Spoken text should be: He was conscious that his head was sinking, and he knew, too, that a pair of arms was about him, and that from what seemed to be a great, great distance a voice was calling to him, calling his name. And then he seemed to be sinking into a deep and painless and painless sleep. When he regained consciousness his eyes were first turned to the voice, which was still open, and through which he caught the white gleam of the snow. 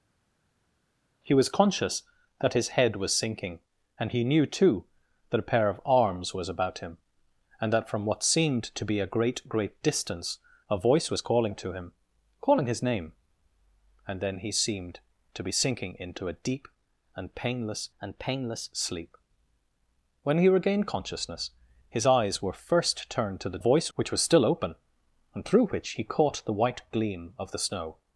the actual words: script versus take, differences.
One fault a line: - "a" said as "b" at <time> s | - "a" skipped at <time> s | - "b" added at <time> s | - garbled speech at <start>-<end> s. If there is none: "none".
none